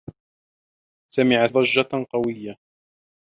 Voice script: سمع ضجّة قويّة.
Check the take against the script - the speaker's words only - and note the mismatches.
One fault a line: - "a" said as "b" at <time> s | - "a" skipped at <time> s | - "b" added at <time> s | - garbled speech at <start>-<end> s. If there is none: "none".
none